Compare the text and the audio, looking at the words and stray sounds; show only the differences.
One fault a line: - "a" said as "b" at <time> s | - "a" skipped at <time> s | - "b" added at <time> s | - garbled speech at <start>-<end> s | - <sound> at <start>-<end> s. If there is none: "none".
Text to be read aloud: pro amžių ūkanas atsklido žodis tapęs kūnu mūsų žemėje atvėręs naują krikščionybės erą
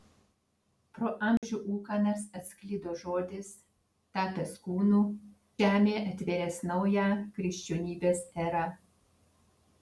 - dropout at 1.4-1.4 s
- "mūsų" skipped at 5.0 s